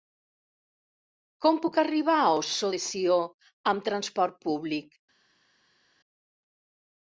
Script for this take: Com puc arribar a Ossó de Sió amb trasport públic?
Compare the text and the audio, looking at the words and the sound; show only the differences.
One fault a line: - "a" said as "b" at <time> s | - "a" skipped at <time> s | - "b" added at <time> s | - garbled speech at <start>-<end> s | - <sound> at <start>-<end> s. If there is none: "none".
none